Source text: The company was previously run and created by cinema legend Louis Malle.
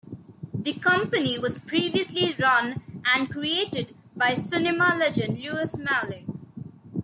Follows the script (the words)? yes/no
yes